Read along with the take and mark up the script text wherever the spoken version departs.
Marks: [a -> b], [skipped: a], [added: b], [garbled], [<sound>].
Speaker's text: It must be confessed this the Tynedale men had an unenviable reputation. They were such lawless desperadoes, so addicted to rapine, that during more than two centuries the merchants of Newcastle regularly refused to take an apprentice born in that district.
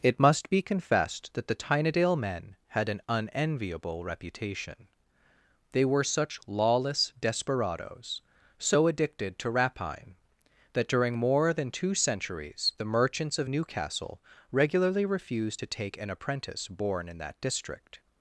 It must be confessed [this -> that] the Tynedale men had an unenviable reputation. They were such lawless desperadoes, so addicted to rapine, that during more than two centuries the merchants of Newcastle regularly refused to take an apprentice born in that district.